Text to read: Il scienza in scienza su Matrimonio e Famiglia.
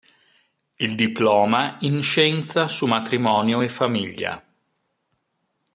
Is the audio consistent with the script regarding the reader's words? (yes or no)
no